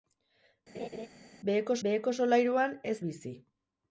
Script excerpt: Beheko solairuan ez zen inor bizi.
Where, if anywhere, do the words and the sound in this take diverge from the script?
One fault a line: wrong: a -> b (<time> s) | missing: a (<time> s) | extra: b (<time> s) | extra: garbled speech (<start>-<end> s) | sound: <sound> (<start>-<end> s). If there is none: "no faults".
sound: laugh (0.7-1.1 s)
extra: beheko (1.9 s)
missing: zen inor (3.0 s)